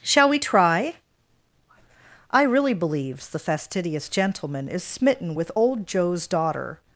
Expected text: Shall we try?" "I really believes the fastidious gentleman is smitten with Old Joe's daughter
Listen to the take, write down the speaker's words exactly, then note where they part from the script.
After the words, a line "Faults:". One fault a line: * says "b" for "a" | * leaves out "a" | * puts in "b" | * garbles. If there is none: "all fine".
Shall we try?" "I really believes the fastidious gentleman is smitten with Old Joe's daughter
Faults:
all fine